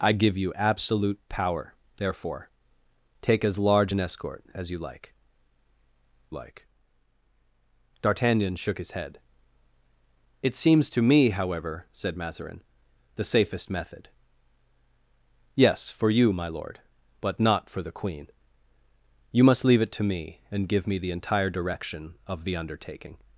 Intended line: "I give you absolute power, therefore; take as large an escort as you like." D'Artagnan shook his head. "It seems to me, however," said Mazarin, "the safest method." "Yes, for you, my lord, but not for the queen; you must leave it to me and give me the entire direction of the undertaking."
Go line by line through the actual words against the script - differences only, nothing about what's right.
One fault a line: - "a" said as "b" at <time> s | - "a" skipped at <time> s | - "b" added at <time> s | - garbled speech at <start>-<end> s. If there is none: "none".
- "like" added at 6.3 s